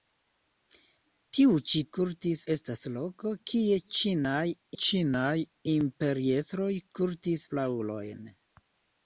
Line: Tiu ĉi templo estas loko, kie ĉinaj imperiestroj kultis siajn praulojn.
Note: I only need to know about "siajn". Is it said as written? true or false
false